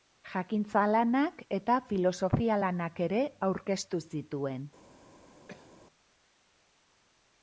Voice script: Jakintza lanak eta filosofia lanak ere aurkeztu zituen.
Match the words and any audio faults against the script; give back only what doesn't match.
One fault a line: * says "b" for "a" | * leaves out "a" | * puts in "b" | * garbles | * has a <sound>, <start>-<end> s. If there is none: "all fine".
* has a cough, 5.5-5.7 s